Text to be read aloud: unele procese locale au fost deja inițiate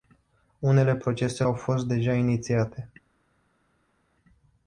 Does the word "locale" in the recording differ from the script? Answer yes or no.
yes